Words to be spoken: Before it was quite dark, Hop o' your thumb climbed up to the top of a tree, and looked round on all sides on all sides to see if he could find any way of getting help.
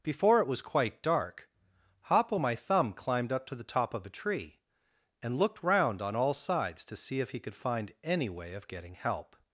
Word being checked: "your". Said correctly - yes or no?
no